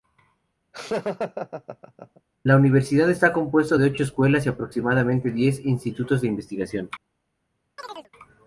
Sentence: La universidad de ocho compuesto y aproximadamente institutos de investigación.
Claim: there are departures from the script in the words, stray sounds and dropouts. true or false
true